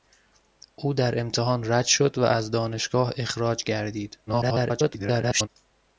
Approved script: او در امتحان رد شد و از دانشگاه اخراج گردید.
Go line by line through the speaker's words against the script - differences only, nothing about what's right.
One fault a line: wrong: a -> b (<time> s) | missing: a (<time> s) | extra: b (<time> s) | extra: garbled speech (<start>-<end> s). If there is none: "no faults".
extra: garbled speech (4.3-5.5 s)